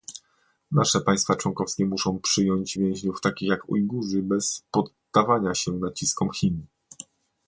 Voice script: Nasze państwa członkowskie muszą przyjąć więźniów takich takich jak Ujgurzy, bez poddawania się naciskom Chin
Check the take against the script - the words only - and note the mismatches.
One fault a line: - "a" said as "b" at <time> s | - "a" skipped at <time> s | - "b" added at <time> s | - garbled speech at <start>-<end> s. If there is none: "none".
- "takich" skipped at 3.5 s